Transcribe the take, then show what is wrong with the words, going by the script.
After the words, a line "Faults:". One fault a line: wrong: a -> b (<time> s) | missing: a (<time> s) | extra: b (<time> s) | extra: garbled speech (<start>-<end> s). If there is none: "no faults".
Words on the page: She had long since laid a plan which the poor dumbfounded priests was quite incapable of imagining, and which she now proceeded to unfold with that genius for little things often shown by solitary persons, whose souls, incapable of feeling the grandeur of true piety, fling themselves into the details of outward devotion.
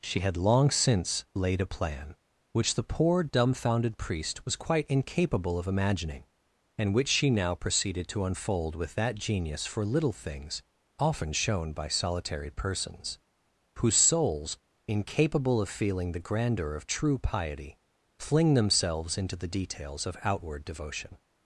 She had long since laid a plan which the poor dumbfounded priest was quite incapable of imagining, and which she now proceeded to unfold with that genius for little things often shown by solitary persons, whose souls, incapable of feeling the grandeur of true piety, fling themselves into the details of outward devotion.
Faults:
wrong: priests -> priest (4.0 s)